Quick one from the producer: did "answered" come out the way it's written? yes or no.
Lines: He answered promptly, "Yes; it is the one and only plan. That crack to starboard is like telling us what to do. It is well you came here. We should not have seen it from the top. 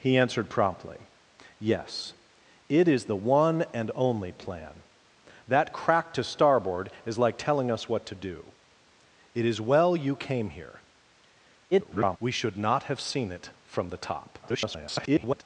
yes